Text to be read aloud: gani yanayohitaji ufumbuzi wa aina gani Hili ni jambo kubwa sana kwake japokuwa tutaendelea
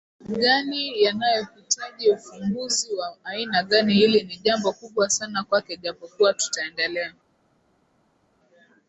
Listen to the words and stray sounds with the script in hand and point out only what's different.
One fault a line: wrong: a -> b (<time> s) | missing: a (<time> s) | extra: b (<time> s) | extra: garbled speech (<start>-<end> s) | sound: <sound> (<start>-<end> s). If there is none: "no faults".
no faults